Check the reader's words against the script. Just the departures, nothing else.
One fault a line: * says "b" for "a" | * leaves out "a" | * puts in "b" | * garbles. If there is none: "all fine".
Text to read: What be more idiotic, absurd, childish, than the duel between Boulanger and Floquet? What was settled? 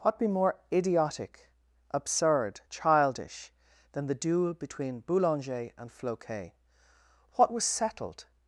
all fine